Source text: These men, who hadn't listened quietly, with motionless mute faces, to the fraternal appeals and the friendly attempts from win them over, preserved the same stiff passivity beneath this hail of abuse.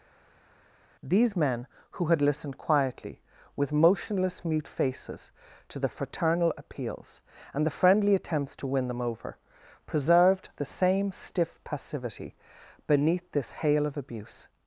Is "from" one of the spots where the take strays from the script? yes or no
yes